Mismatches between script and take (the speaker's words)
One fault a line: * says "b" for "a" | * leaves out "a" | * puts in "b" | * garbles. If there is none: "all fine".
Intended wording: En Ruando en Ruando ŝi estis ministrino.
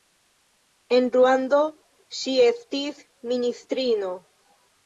* leaves out "en Ruando"